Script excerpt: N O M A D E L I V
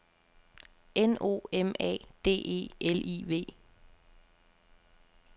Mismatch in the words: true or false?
false